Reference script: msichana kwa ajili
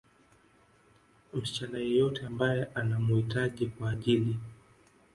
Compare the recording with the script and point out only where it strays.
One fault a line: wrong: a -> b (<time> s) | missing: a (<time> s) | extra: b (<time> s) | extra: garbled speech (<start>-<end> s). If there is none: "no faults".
extra: yeyote ambaye anamuhitaji (1.8 s)